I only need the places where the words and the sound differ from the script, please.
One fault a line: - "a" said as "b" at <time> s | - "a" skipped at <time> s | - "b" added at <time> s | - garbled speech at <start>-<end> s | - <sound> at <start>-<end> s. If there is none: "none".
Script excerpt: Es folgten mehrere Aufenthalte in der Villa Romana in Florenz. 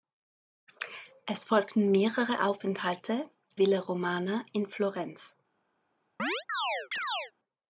- "in der" skipped at 3.3 s
- chirp at 6.2-7.3 s